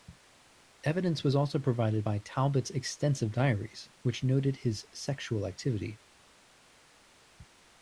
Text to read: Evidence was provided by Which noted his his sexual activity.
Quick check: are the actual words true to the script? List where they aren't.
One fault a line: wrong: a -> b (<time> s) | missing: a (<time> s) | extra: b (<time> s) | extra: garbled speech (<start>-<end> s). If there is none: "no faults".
extra: also (1.4 s)
extra: Talbot's extensive diaries (2.2 s)
missing: his (4.8 s)